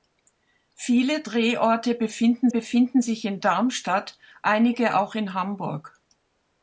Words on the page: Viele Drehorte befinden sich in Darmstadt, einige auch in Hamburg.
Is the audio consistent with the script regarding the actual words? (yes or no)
no